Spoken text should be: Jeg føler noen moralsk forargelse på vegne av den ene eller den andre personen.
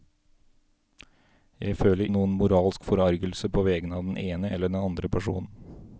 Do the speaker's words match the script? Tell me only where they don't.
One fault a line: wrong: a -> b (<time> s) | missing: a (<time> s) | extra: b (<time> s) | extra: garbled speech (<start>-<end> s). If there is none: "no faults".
no faults